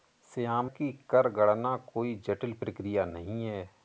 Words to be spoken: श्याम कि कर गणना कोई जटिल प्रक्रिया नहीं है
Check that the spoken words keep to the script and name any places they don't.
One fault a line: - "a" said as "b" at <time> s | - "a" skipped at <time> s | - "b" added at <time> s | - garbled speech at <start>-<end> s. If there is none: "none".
none